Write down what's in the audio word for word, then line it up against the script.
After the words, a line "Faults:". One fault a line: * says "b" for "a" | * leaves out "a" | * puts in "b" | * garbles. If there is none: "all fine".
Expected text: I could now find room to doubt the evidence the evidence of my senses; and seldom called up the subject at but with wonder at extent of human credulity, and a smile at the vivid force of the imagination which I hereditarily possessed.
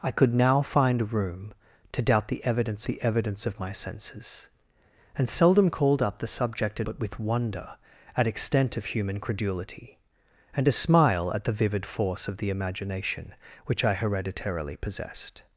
I could now find room to doubt the evidence the evidence of my senses; and seldom called up the subject at but with wonder at extent of human credulity, and a smile at the vivid force of the imagination which I hereditarily possessed.
Faults:
all fine